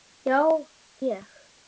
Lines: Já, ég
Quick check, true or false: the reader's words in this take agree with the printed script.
true